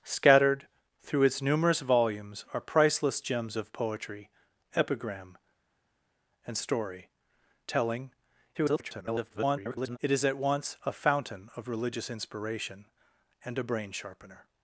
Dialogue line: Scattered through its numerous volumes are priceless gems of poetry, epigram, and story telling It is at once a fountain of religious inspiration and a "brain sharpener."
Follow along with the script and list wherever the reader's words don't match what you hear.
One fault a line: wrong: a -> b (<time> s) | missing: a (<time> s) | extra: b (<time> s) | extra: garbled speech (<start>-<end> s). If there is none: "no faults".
extra: garbled speech (8.5-10.0 s)